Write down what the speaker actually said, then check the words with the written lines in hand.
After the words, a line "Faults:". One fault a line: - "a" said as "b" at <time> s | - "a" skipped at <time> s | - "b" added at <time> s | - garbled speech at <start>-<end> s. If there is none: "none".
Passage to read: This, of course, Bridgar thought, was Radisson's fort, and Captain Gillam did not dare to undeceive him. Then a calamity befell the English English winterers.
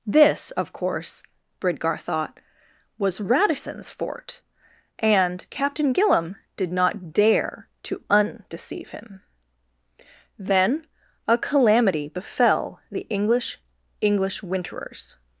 This, of course, Bridgar thought, was Radisson's fort, and Captain Gillam did not dare to undeceive him. Then a calamity befell the English English winterers.
Faults:
none